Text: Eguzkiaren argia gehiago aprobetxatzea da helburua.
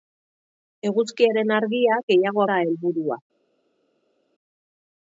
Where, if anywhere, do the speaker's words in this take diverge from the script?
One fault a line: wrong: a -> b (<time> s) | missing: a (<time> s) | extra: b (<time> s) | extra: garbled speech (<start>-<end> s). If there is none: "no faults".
missing: aprobetxatzea (2.5 s)